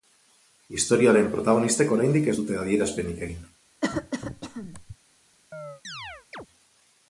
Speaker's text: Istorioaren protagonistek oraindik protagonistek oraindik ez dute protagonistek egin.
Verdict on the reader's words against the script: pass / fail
fail